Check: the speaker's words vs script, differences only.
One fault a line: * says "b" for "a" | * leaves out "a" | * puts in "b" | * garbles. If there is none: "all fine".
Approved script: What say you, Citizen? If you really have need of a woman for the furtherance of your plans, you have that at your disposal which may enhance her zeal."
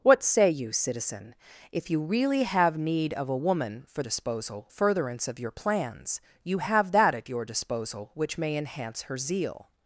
* says "disposal" for "the"